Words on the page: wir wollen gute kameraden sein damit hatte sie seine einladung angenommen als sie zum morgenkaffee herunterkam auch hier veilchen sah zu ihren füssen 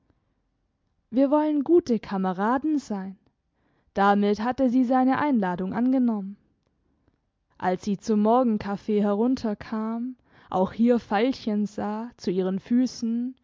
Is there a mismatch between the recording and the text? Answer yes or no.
no